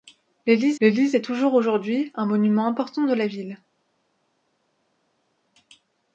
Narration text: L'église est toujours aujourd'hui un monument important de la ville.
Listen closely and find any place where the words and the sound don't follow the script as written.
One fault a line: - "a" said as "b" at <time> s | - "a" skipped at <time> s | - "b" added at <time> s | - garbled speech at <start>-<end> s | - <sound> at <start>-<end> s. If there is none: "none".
- "l'église" added at 0.8 s